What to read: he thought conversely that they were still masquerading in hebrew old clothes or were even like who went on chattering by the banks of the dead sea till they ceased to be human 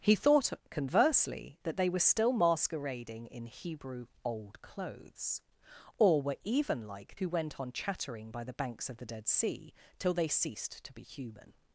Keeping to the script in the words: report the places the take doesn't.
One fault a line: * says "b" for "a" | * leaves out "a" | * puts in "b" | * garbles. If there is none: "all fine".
all fine